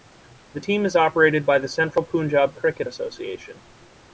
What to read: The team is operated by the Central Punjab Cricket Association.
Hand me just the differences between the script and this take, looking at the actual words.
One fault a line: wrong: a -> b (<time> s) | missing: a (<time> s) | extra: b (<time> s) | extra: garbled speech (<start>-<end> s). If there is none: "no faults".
no faults